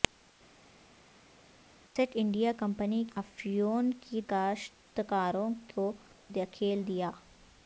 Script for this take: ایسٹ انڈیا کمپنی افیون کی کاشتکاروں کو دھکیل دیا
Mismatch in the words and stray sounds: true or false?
false